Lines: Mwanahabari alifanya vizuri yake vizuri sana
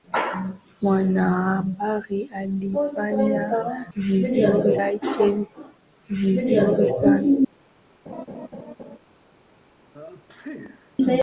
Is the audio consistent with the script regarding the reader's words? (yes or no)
yes